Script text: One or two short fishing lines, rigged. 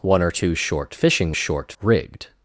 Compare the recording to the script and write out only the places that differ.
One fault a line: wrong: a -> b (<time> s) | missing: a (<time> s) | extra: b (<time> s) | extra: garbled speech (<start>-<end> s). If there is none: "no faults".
wrong: lines -> short (1.3 s)